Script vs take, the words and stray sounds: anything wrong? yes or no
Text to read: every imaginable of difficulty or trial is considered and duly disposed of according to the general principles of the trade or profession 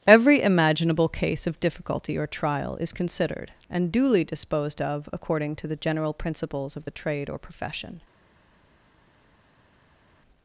yes